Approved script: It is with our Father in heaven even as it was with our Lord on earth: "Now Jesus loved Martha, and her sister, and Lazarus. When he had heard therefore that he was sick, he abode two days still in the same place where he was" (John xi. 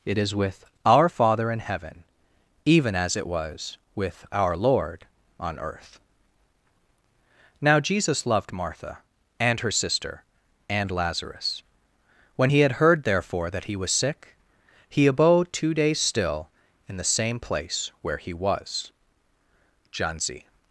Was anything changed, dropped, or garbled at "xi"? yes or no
yes